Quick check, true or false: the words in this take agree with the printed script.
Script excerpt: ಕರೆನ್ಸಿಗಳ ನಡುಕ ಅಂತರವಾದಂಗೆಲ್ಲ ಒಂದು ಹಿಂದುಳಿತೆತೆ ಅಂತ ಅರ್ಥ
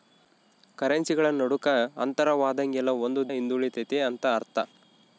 true